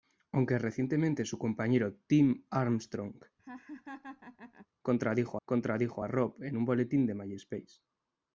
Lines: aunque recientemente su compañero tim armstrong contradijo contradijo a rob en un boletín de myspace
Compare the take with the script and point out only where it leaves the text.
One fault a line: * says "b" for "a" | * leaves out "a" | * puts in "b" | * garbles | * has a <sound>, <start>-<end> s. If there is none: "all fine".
* has a laugh, 3.4-4.7 s